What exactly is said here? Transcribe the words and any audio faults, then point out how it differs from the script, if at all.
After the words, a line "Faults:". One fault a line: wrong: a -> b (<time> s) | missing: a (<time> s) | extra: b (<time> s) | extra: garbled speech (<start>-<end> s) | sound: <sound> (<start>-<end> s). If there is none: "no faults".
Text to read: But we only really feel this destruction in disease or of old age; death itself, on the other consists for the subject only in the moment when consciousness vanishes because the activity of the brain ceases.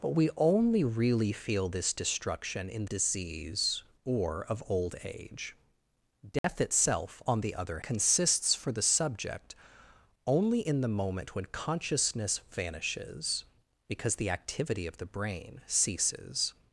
But we only really feel this destruction in disease or of old age; death itself, on the other consists for the subject only in the moment when consciousness vanishes because the activity of the brain ceases.
Faults:
sound: dropout (6.4-6.4 s)